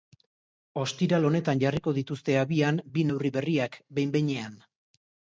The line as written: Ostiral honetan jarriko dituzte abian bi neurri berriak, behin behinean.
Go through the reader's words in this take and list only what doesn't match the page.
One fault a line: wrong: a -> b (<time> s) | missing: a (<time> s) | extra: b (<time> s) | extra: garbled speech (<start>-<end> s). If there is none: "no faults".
no faults